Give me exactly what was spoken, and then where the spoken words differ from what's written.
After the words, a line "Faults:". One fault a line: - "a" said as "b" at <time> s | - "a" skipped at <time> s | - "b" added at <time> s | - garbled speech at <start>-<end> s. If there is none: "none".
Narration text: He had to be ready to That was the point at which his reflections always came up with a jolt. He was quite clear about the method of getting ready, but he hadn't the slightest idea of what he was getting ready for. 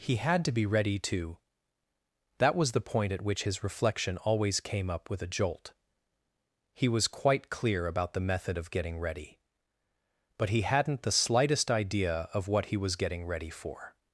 He had to be ready to That was the point at which his reflection always came up with a jolt. He was quite clear about the method of getting ready, but he hadn't the slightest idea of what he was getting ready for.
Faults:
- "reflections" said as "reflection" at 3.6 s